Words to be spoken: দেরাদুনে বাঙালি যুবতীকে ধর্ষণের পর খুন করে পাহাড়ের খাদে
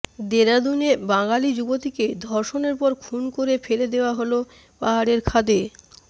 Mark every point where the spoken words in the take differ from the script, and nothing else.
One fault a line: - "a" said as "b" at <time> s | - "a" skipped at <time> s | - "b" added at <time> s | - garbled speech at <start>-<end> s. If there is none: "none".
- "ফেলে দেওয়া হল" added at 3.6 s